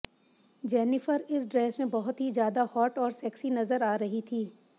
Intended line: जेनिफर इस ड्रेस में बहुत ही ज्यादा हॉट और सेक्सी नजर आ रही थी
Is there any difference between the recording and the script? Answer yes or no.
no